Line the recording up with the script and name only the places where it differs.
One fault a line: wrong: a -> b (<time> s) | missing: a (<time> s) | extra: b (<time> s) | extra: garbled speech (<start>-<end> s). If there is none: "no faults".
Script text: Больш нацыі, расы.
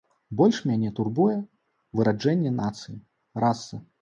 extra: мяне турбуе выраджэнне (0.7 s)